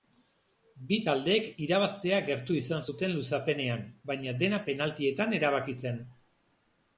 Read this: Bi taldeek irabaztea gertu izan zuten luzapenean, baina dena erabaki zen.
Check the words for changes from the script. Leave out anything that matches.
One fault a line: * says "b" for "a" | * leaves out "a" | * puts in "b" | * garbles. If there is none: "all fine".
* puts in "penaltietan"